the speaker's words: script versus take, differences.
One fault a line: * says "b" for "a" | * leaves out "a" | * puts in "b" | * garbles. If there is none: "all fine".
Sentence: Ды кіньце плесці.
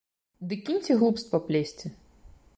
* puts in "глупства"